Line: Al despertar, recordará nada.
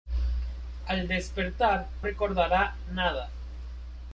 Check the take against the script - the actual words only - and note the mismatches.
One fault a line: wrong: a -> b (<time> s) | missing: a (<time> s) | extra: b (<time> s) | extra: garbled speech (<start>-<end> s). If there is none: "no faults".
no faults